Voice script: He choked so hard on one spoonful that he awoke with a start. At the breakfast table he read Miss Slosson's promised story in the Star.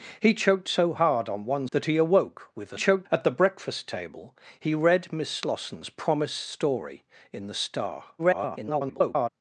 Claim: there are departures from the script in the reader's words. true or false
true